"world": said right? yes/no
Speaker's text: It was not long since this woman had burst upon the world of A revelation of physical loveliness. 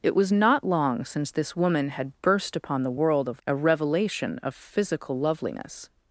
yes